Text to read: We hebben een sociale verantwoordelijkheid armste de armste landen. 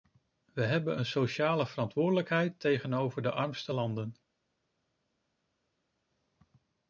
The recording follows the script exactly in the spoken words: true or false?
false